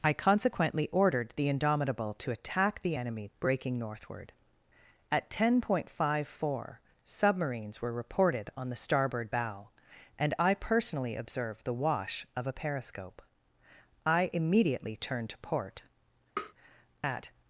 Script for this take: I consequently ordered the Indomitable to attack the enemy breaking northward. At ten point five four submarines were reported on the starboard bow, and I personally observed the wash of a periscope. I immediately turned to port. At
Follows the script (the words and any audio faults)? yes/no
no